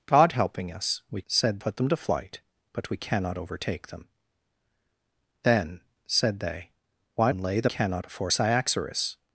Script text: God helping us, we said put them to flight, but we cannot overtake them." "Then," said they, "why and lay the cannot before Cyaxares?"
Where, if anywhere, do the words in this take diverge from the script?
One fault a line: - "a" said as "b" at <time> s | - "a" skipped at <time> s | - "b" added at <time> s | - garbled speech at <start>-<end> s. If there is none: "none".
none